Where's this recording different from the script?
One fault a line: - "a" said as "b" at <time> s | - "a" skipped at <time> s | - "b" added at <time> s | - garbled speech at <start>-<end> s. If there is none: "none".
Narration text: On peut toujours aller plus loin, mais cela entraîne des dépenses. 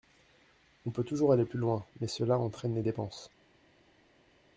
none